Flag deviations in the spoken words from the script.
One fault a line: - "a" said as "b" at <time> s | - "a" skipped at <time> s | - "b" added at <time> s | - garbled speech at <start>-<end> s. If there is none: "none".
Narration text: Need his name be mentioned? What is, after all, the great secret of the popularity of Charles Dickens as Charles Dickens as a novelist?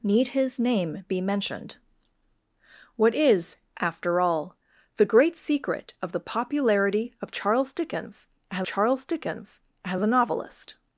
none